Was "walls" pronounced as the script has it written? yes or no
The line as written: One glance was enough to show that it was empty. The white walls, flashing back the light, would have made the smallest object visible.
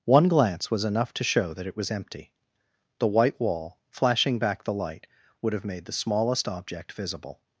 no